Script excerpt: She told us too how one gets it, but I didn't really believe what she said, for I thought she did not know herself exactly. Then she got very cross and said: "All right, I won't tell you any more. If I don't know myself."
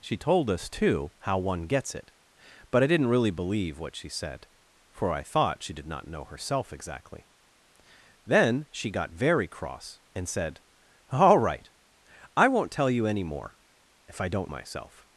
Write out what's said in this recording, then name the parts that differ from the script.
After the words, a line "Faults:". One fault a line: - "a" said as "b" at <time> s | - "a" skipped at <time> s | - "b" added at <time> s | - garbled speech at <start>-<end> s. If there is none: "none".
She told us too how one gets it, but I didn't really believe what she said, for I thought she did not know herself exactly. Then she got very cross and said: "All right, I won't tell you any more. If I don't myself."
Faults:
- "know" skipped at 14.5 s